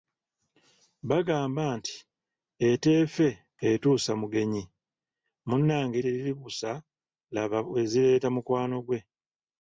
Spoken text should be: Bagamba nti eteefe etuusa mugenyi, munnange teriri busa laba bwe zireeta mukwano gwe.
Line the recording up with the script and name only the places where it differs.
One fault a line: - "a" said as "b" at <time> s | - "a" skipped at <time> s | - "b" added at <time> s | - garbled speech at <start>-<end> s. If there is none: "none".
none